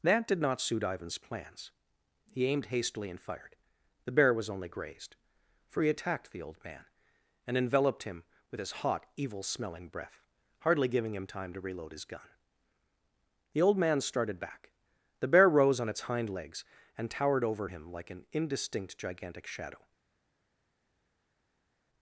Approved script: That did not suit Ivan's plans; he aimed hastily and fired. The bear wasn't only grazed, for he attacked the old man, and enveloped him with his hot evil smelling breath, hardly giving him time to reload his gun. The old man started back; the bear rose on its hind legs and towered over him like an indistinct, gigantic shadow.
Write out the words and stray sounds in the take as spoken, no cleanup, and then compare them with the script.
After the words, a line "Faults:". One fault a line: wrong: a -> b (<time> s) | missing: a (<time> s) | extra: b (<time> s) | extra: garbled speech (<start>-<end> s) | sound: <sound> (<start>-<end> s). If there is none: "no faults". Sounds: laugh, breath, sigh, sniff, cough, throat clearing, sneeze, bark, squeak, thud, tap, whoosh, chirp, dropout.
That did not suit Ivan's plans; he aimed hastily and fired. The bear was only grazed, for he attacked the old man, and enveloped him with his hot evil smelling breath, hardly giving him time to reload his gun. The old man started back; the bear rose on its hind legs and towered over him like an indistinct, gigantic shadow.
Faults:
wrong: wasn't -> was (4.3 s)